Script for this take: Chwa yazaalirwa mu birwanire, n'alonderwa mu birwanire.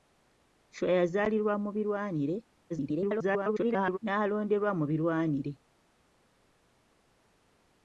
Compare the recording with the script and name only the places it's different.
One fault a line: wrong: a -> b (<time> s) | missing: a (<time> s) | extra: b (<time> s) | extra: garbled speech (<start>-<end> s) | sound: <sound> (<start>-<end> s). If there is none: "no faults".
extra: garbled speech (2.7-4.0 s)